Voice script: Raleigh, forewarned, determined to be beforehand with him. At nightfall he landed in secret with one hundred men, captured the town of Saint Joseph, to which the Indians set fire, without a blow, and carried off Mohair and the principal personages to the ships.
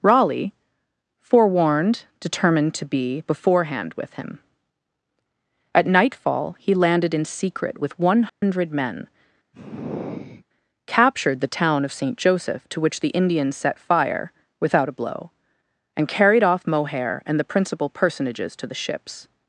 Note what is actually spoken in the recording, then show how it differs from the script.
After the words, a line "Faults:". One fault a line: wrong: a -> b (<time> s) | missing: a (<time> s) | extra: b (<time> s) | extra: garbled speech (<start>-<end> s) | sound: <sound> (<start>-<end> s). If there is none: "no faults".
Raleigh, forewarned, determined to be beforehand with him. At nightfall he landed in secret with one hundred men, captured the town of Saint Joseph, to which the Indians set fire, without a blow, and carried off Mohair and the principal personages to the ships.
Faults:
sound: dropout (8.3-8.4 s)
sound: sigh (9.5-10.5 s)